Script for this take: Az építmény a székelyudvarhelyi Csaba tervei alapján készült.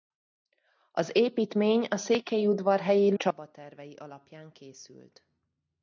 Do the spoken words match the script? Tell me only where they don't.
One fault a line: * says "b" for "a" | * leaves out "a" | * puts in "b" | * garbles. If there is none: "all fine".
all fine